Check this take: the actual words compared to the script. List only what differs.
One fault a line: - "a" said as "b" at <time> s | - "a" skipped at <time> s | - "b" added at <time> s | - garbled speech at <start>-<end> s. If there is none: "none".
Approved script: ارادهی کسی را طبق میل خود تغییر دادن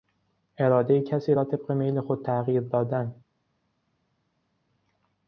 none